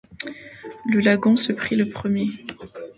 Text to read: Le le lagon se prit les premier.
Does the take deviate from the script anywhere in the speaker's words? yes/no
yes